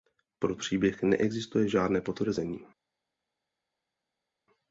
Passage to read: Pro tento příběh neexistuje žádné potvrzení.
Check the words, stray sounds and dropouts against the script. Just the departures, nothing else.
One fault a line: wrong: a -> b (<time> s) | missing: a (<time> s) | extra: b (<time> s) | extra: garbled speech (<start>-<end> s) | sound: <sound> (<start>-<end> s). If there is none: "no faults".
missing: tento (0.6 s)